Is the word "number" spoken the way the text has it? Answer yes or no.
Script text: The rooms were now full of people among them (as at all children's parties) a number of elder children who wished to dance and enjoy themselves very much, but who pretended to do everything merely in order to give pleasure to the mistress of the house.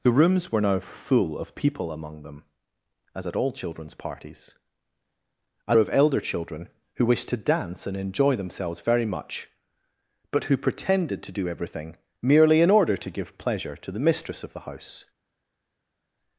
no